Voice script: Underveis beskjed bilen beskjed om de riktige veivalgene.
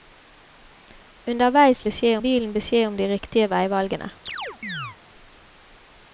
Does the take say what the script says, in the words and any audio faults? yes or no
no